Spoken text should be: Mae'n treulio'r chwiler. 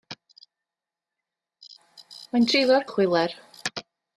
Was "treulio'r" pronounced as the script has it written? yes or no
yes